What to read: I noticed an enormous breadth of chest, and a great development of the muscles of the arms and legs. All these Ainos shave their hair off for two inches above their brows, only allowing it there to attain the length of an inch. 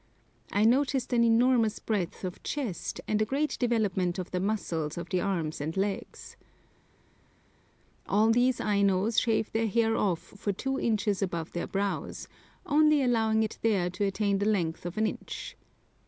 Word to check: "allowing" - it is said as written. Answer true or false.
true